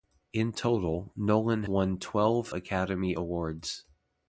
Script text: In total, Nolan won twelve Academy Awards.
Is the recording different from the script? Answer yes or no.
no